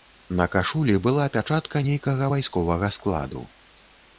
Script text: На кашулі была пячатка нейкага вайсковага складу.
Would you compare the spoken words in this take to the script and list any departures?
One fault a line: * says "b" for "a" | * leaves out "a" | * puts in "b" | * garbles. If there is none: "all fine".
all fine